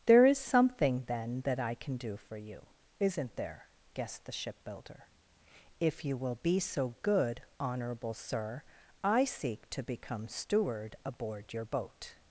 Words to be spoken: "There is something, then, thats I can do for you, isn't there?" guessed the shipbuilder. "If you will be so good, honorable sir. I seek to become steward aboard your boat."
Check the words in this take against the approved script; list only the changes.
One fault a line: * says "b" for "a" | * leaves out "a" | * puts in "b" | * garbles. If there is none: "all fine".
* says "that" for "thats"